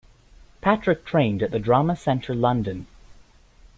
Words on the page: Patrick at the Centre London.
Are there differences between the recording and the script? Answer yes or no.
yes